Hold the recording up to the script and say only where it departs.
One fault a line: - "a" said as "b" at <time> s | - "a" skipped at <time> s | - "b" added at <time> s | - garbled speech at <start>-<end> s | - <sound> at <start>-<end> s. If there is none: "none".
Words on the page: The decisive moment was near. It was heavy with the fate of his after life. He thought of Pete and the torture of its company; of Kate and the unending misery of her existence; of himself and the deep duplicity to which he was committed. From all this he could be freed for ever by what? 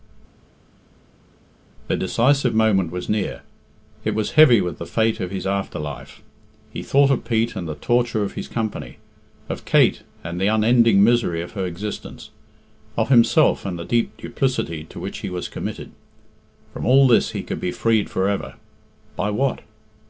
- "its" said as "his" at 8.3 s